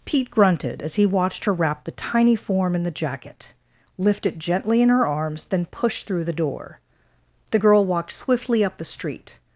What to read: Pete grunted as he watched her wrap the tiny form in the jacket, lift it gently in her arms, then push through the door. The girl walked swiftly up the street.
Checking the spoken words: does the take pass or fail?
pass